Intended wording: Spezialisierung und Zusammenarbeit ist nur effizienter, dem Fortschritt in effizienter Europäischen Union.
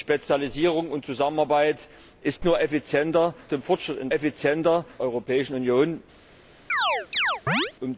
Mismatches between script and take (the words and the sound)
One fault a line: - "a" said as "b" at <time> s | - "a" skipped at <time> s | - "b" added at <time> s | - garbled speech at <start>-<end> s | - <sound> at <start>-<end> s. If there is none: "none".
- chirp at 6.7-7.7 s